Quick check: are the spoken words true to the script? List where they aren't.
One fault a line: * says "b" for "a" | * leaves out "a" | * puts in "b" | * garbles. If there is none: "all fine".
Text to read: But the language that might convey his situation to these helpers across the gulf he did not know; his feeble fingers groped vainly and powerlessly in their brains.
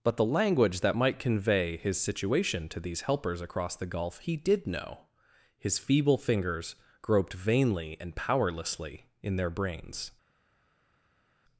* leaves out "not"